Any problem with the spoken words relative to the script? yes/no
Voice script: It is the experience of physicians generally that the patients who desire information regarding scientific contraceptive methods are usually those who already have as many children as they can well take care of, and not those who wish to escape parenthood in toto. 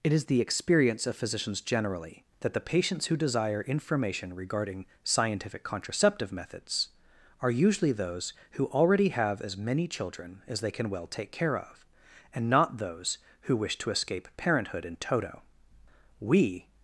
yes